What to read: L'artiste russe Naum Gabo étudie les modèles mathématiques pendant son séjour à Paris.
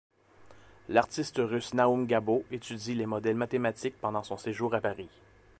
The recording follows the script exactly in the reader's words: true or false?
true